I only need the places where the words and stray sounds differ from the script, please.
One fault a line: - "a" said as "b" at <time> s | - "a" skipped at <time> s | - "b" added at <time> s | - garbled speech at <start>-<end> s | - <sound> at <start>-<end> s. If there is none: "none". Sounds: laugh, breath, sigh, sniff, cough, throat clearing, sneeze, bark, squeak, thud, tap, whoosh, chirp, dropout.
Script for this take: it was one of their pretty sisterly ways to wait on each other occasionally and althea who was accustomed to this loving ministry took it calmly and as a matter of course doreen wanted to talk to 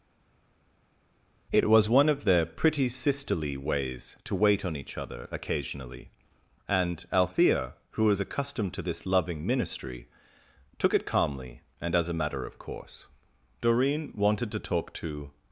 none